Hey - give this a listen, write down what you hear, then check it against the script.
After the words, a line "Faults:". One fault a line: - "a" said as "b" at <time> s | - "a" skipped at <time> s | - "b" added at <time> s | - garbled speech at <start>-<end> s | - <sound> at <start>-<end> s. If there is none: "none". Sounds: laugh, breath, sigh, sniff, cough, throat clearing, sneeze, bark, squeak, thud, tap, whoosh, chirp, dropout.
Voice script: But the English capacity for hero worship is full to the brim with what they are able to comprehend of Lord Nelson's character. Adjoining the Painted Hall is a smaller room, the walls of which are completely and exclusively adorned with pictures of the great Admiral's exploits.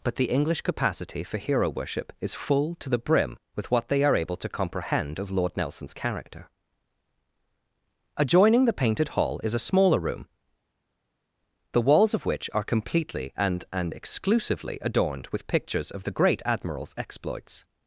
But the English capacity for hero worship is full to the brim with what they are able to comprehend of Lord Nelson's character. Adjoining the Painted Hall is a smaller room, the walls of which are completely and and exclusively adorned with pictures of the great Admiral's exploits.
Faults:
- "and" added at 13.7 s